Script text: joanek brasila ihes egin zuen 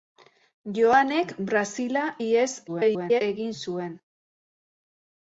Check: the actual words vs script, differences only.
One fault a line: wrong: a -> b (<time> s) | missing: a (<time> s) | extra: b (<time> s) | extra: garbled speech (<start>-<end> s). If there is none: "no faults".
extra: garbled speech (2.7-3.2 s)